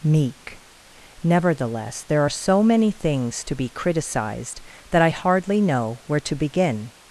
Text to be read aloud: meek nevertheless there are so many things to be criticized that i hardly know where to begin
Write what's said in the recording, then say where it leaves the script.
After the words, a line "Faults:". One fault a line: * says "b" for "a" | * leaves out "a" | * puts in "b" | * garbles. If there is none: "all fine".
meek nevertheless there are so many things to be criticized that i hardly know where to begin
Faults:
all fine